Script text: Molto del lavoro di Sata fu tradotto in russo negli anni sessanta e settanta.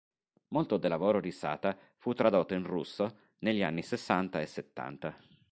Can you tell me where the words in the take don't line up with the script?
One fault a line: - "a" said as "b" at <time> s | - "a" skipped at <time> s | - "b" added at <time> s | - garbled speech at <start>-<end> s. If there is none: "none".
none